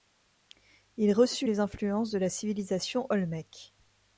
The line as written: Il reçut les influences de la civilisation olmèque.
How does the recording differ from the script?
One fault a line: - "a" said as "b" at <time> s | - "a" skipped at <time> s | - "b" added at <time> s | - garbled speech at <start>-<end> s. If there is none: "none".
none